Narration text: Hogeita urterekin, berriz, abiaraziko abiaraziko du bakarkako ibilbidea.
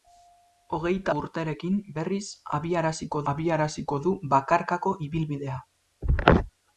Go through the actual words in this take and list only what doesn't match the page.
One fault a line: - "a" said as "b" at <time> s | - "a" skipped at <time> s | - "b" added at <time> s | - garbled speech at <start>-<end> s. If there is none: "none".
none